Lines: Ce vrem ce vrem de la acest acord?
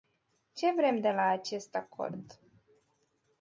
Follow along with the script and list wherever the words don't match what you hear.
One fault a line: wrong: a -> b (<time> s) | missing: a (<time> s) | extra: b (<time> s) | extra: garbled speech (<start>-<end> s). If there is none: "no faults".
missing: ce vrem (1.0 s)